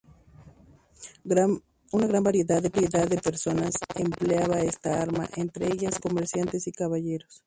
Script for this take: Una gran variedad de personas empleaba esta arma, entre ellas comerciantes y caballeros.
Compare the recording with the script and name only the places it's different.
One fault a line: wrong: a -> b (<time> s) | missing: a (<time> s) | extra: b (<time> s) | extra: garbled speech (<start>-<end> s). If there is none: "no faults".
no faults